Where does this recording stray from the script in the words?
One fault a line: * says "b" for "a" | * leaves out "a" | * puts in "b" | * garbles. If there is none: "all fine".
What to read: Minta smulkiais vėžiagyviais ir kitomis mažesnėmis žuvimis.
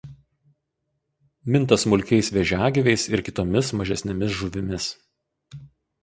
all fine